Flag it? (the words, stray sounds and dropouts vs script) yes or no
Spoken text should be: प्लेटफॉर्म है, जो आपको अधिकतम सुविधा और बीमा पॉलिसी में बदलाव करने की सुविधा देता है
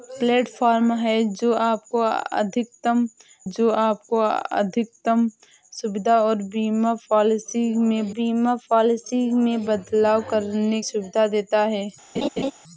yes